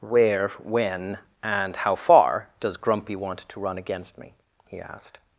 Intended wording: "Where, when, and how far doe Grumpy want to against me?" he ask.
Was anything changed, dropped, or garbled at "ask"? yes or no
yes